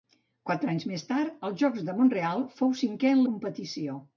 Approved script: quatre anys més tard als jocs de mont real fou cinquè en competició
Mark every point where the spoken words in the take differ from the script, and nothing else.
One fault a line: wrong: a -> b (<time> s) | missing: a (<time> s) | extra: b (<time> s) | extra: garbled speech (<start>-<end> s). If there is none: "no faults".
no faults